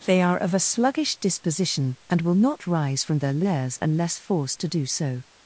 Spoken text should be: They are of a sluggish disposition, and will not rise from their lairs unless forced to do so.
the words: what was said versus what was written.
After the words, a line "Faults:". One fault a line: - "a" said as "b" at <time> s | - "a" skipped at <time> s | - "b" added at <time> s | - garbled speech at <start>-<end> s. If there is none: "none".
They are of a sluggish disposition, and will not rise from their lairs unless forced to do so.
Faults:
none